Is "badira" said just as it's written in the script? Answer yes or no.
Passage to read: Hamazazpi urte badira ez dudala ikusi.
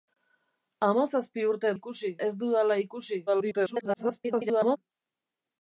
no